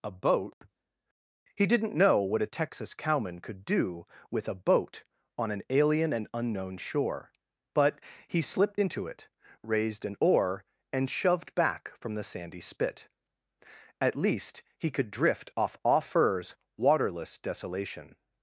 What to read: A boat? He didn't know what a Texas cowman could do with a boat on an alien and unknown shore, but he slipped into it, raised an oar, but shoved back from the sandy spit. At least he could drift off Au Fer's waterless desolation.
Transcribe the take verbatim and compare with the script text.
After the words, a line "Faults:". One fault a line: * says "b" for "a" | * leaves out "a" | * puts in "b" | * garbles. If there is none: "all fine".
A boat? He didn't know what a Texas cowman could do with a boat on an alien and unknown shore, but he slipped into it, raised an oar, and shoved back from the sandy spit. At least he could drift off Au Fer's waterless desolation.
Faults:
* says "and" for "but"